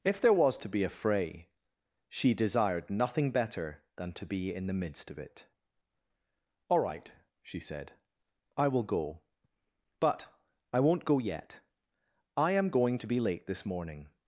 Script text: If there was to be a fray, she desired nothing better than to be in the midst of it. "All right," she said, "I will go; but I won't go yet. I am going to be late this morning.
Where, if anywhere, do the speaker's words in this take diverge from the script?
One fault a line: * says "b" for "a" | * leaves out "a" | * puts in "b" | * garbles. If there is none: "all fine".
all fine